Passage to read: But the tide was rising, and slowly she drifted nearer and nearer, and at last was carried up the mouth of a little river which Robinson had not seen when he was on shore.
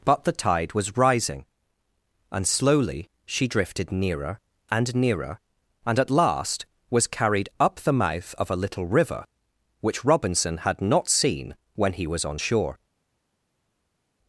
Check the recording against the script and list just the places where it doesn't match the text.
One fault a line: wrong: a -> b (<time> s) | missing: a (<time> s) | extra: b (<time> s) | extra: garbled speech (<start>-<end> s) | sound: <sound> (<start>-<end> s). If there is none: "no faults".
no faults